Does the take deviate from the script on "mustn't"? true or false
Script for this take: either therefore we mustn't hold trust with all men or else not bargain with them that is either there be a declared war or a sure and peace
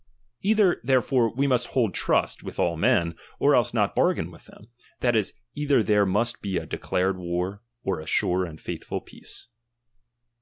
true